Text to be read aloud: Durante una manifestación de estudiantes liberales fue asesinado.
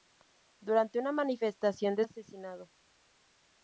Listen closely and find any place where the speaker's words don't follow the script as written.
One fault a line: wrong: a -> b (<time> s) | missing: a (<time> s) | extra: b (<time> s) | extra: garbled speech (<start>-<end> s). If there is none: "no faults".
missing: estudiantes liberales fue (2.0 s)